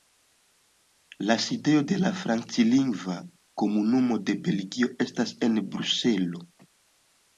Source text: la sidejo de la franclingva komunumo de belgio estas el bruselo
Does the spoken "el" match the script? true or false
false